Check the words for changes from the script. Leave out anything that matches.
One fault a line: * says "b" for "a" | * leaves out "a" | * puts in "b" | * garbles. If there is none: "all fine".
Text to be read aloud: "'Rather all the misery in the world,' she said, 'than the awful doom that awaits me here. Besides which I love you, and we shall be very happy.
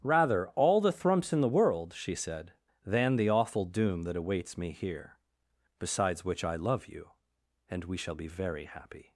* says "thrumps" for "misery"